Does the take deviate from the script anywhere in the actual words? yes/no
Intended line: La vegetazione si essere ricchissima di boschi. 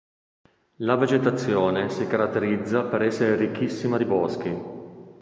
yes